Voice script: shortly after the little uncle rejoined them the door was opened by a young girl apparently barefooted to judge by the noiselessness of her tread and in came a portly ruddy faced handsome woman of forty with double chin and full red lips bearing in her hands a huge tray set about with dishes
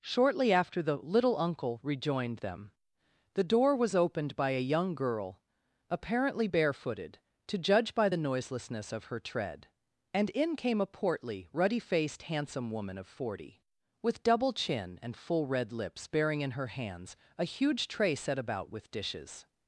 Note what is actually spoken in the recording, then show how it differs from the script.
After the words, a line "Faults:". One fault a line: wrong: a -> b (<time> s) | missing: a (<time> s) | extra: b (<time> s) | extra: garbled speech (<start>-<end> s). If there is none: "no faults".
shortly after the little uncle rejoined them the door was opened by a young girl apparently barefooted to judge by the noiselessness of her tread and in came a portly ruddy faced handsome woman of forty with double chin and full red lips bearing in her hands a huge tray set about with dishes
Faults:
no faults